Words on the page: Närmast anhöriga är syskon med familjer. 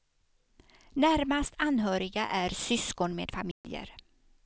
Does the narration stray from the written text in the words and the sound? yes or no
yes